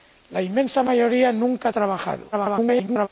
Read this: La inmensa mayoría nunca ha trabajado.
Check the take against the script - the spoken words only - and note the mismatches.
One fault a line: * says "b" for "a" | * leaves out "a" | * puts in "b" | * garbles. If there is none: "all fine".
* garbles